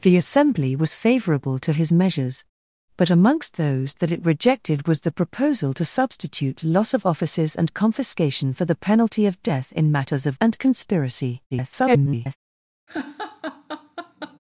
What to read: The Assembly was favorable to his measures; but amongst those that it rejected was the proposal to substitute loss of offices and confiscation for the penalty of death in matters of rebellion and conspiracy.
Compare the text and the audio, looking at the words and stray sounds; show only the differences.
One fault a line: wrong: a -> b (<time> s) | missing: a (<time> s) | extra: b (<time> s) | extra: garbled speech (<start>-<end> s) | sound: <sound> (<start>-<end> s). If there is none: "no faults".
missing: rebellion (10.4 s)
extra: garbled speech (11.5-12.4 s)
sound: laugh (12.9-14.4 s)